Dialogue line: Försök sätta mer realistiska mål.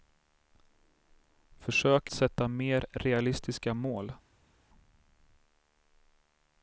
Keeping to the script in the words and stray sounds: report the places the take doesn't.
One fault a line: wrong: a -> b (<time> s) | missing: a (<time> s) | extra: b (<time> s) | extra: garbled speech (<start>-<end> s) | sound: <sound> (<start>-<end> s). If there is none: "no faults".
no faults